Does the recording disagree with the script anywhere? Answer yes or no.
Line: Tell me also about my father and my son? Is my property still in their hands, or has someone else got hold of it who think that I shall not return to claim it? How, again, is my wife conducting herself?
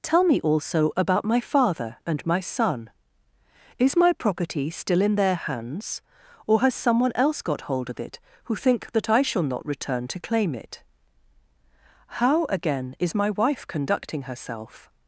no